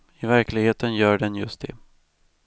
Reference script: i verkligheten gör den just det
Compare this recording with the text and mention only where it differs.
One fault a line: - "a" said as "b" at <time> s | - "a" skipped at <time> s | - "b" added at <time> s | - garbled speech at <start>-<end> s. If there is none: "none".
none